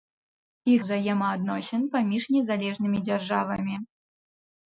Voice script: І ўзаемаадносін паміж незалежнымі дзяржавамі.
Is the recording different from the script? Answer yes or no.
no